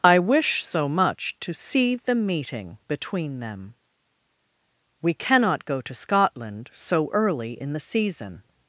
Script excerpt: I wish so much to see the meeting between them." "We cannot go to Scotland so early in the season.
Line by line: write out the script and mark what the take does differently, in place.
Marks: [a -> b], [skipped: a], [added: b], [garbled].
I wish so much to see the meeting between them." "We cannot go to Scotland so early in the season.